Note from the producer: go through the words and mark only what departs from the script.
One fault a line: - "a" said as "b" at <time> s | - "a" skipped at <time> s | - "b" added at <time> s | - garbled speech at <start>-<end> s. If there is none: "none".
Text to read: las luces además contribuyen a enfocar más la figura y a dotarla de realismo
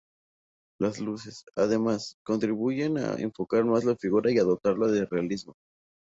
none